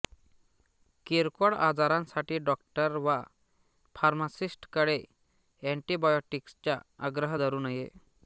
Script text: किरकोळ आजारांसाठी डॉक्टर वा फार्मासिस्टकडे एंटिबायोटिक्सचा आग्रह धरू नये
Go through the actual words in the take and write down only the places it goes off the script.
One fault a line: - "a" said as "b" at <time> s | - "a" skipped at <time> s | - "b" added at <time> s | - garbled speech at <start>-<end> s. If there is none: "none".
none